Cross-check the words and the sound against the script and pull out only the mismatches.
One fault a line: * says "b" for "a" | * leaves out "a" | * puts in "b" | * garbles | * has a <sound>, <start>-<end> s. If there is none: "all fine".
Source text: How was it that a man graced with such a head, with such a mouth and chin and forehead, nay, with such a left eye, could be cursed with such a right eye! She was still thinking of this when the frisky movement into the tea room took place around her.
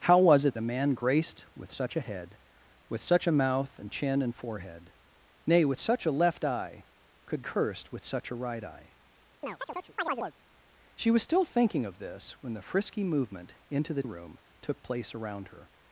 * leaves out "that"
* leaves out "be"
* has a chirp, 9.4-10.3 s
* leaves out "tea"